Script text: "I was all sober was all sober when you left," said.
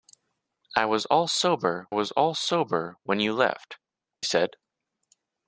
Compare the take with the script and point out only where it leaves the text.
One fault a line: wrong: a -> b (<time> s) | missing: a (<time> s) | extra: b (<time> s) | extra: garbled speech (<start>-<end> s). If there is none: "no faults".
no faults